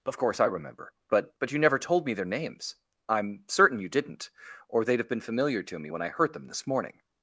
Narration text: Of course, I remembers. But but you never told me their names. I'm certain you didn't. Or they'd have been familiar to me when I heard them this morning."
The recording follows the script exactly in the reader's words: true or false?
false